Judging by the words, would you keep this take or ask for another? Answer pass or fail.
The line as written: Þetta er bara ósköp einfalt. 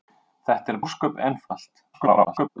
fail